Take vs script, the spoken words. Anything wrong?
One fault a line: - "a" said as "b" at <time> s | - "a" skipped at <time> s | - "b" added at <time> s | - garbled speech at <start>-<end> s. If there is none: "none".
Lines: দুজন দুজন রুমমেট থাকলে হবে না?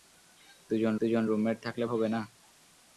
none